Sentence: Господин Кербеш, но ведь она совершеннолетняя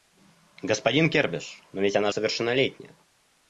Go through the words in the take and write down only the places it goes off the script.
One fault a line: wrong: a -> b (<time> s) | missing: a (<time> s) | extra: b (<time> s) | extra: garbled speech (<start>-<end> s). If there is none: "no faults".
no faults